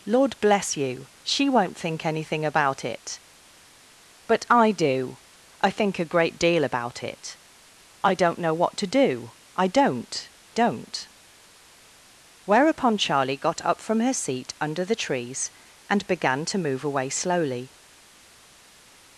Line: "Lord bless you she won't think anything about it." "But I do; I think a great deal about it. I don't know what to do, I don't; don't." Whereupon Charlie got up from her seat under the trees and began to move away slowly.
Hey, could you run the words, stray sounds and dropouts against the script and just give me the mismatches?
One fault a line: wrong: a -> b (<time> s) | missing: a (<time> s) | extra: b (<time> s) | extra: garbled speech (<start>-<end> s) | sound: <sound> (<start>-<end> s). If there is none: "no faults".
no faults